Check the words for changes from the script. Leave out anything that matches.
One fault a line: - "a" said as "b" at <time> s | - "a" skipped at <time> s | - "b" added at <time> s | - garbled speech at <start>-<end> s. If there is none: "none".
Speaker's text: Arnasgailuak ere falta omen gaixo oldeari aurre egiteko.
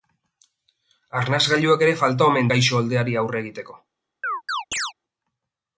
none